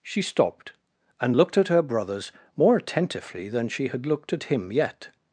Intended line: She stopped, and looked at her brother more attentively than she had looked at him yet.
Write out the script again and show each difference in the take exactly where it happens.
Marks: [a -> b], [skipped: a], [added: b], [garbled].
She stopped, and looked at her [brother -> brothers] more attentively than she had looked at him yet.